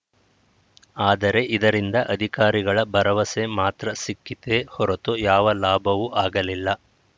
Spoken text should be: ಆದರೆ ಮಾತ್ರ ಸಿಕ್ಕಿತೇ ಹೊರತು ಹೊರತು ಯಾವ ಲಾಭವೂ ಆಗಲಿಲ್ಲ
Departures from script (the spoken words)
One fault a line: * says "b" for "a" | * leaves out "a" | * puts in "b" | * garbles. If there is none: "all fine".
* puts in "ಇದರಿಂದ ಅಧಿಕಾರಿಗಳ ಭರವಸೆ"
* leaves out "ಹೊರತು"